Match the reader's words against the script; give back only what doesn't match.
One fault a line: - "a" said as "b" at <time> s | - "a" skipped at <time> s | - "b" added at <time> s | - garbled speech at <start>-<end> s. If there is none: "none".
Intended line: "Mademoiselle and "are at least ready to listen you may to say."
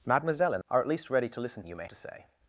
none